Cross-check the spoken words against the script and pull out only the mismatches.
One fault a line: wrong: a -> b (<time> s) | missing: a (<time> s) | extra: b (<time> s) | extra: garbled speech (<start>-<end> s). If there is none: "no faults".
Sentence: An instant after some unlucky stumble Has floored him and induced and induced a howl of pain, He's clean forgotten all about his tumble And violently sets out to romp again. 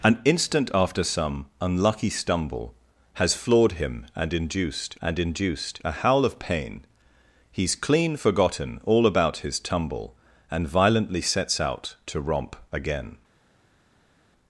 no faults